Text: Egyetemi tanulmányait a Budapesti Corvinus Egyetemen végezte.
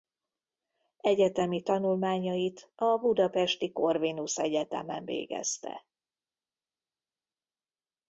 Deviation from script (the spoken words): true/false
false